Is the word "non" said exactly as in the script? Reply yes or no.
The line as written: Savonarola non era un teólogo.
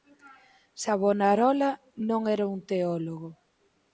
yes